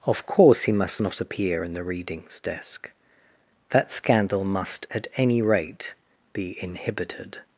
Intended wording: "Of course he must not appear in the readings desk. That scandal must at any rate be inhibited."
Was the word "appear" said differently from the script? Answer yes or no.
no